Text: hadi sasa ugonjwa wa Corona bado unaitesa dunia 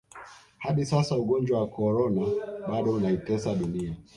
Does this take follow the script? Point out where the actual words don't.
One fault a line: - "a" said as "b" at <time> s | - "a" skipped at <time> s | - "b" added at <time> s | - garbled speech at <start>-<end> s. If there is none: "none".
none